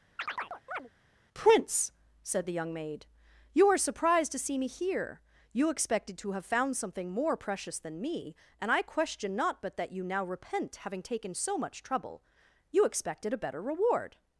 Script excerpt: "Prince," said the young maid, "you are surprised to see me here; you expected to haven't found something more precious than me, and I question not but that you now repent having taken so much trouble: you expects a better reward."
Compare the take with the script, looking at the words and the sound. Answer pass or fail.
fail